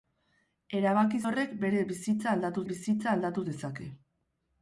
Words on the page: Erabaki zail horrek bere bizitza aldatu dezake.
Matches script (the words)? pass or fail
fail